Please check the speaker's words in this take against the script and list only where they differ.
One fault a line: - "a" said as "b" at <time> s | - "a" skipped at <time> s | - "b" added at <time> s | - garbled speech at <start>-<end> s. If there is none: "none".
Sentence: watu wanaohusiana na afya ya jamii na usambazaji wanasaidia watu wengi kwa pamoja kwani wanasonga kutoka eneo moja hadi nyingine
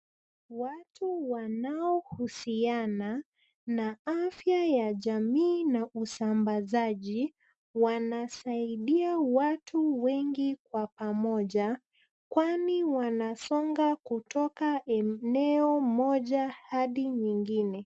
none